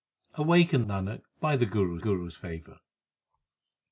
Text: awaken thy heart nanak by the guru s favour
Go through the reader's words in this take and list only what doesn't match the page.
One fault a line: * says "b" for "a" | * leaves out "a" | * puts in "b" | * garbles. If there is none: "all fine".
* leaves out "thy heart"
* puts in "guru"